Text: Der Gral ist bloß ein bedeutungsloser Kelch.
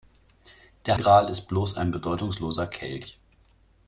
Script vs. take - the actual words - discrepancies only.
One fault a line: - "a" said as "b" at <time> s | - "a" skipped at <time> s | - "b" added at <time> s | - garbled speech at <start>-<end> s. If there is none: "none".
none